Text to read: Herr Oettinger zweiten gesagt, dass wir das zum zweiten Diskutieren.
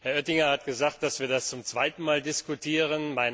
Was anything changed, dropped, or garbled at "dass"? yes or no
no